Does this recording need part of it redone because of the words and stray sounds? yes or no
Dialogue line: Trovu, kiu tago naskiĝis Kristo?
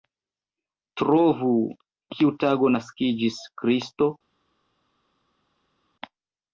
no